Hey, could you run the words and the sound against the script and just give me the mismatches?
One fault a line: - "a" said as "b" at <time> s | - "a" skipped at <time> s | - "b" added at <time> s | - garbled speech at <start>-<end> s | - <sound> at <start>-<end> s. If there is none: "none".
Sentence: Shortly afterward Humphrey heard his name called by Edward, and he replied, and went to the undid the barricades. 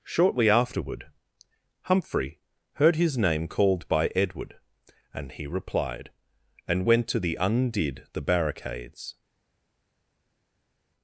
none